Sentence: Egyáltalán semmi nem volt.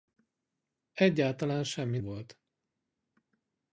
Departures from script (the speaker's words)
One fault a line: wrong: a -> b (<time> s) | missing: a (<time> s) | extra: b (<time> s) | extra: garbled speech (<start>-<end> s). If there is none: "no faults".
missing: nem (2.0 s)